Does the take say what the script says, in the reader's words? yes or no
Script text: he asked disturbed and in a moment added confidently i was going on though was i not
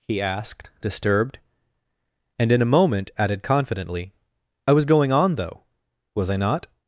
yes